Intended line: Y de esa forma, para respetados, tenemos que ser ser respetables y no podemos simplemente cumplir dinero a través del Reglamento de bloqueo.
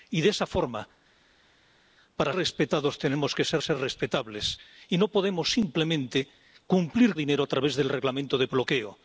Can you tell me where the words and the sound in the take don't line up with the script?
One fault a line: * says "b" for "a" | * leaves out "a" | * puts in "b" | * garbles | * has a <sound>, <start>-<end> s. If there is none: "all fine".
all fine